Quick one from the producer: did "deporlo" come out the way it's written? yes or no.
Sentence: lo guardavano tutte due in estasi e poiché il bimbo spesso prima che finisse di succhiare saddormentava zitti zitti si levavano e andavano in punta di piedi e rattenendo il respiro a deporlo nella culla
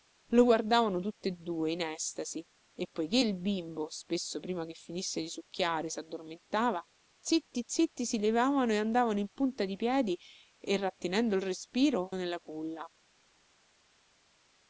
no